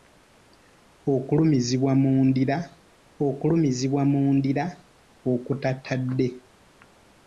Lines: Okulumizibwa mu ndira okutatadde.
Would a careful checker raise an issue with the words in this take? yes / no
yes